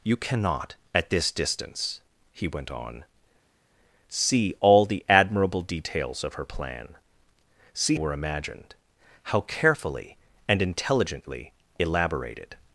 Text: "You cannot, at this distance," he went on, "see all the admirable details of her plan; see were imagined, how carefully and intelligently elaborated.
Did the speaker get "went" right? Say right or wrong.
right